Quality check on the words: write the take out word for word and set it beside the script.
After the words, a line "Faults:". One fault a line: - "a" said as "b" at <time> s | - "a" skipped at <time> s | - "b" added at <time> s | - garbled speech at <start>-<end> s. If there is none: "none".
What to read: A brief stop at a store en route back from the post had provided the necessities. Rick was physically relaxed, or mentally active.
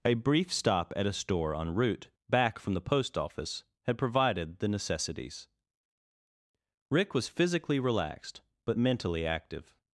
A brief stop at a store en route back from the post office had provided the necessities. Rick was physically relaxed, but mentally active.
Faults:
- "office" added at 3.2 s
- "or" said as "but" at 8.7 s